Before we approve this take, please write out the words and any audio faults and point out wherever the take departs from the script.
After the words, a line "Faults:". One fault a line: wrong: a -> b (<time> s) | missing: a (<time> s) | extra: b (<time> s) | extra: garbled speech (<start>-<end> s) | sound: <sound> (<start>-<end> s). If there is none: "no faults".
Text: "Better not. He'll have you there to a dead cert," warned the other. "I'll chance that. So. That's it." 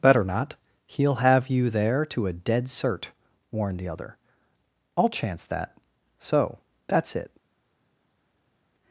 "Better not. He'll have you there to a dead cert," warned the other. "I'll chance that. So. That's it."
Faults:
no faults